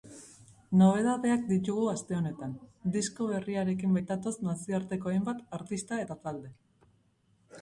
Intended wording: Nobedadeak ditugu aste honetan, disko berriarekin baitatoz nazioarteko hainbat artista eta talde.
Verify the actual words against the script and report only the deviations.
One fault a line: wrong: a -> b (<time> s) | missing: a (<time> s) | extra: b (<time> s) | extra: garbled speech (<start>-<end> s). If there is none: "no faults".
no faults